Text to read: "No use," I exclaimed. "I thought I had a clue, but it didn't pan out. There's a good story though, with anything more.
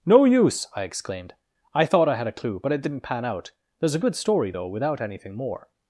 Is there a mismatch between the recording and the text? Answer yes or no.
yes